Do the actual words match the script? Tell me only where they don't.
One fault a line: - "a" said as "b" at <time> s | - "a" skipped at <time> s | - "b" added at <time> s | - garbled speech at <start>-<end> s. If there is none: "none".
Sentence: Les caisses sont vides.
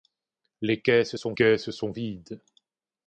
- "caisses sont" added at 1.3 s